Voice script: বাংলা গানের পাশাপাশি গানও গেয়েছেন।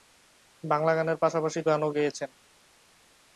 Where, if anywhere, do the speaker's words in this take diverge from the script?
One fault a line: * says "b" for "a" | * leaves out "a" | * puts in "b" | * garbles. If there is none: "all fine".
all fine